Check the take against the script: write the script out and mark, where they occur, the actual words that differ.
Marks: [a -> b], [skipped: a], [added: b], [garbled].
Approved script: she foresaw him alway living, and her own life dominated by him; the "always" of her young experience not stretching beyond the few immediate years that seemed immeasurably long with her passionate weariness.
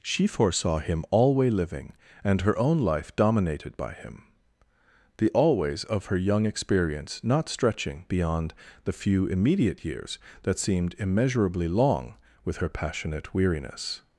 she foresaw him alway living, and her own life dominated by him; the "always" of her young experience not stretching beyond the few immediate years that seemed immeasurably long with her passionate weariness.